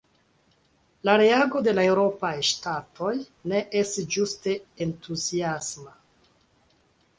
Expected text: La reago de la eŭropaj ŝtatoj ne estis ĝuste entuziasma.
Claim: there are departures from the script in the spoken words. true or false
false